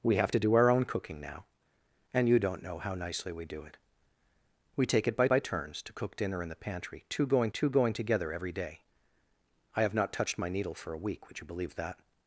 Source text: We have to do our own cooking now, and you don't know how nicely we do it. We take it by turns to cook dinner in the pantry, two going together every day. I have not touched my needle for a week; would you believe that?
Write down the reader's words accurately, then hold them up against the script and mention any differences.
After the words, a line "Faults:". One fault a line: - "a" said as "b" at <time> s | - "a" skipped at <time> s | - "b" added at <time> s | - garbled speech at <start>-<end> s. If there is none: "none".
We have to do our own cooking now, and you don't know how nicely we do it. We take it by by turns to cook dinner in the pantry, two going two going together every day. I have not touched my needle for a week; would you believe that?
Faults:
- "by" added at 5.3 s
- "two going" added at 7.5 s